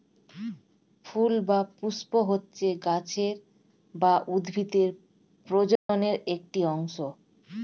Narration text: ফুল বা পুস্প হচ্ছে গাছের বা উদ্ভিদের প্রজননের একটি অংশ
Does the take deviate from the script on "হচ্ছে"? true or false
false